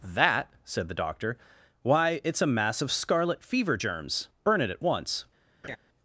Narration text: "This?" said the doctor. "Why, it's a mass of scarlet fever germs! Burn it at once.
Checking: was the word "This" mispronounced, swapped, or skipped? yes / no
yes